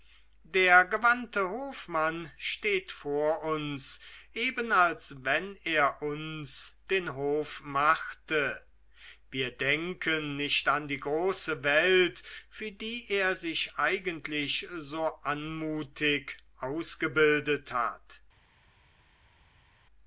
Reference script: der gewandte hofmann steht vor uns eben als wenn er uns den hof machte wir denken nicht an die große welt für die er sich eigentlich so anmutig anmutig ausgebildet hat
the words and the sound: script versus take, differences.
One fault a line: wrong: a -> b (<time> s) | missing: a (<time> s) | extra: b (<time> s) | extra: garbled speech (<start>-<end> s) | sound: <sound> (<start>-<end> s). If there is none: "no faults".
missing: anmutig (16.4 s)